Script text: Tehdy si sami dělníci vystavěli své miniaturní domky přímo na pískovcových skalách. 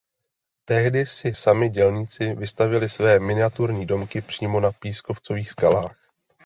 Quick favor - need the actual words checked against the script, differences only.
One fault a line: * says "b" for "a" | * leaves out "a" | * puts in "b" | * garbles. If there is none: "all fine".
all fine